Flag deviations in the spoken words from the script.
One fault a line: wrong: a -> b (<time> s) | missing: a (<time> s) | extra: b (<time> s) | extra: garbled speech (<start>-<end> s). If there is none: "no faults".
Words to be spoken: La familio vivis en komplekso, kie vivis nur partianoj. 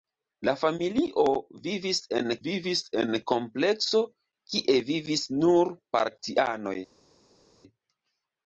extra: vivis en (2.5 s)